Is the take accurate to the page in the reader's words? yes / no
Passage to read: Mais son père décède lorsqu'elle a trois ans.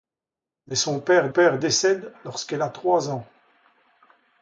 no